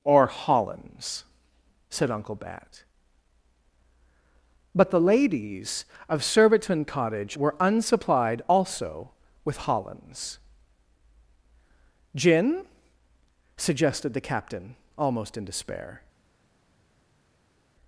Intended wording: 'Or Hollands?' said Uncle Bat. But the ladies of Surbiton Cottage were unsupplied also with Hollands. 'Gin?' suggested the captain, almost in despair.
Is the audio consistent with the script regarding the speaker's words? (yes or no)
yes